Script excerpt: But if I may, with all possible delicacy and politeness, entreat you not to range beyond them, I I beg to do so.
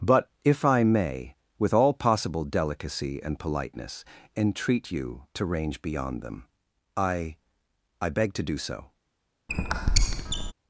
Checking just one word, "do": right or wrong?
right